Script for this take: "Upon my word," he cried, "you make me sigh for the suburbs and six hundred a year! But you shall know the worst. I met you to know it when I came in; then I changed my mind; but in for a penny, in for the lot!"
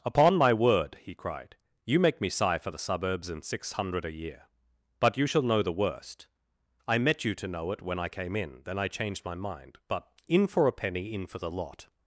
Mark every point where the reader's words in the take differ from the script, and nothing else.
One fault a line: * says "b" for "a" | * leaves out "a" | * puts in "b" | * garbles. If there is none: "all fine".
all fine